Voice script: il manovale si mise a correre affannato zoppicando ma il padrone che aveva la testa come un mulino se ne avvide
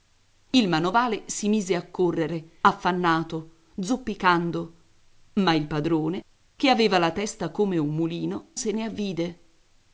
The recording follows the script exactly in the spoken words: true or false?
true